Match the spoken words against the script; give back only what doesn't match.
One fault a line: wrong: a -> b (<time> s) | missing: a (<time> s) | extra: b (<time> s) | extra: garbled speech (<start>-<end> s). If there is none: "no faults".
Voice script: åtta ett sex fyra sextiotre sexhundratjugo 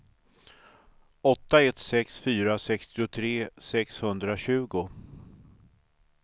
no faults